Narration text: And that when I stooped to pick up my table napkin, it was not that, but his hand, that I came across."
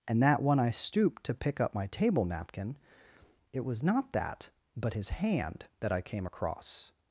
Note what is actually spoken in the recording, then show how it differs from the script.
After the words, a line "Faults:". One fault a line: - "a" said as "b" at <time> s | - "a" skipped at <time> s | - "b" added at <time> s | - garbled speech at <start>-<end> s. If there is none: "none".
And that when I stooped to pick up my table napkin, it was not that, but his hand, that I came across."
Faults:
none